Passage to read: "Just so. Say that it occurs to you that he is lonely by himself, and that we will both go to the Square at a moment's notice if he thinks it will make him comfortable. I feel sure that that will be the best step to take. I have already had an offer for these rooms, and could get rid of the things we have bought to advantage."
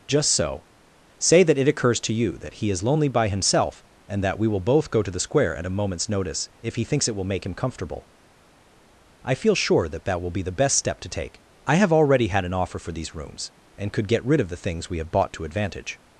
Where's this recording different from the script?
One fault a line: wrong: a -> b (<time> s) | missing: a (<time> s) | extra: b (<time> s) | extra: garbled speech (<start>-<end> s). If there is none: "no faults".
no faults